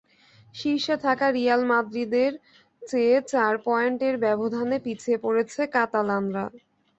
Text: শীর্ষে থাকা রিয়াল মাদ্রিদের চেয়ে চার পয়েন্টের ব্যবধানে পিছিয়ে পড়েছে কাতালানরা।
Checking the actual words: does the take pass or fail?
pass